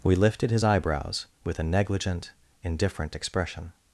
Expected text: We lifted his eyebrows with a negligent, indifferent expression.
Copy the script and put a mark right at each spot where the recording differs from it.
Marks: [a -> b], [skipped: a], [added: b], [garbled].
We lifted his eyebrows with a negligent, indifferent expression.